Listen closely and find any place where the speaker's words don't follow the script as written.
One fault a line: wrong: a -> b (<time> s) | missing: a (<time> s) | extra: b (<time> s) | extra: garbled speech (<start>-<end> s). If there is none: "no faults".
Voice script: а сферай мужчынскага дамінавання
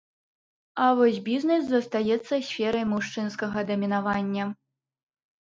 extra: вось бізнэс застаецца (1.0 s)